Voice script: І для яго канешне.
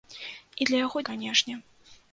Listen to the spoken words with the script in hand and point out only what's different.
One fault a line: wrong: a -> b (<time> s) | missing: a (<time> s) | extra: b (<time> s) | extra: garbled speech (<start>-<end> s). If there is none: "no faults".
no faults